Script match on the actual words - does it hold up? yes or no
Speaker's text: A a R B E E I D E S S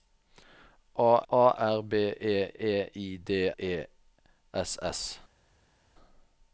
yes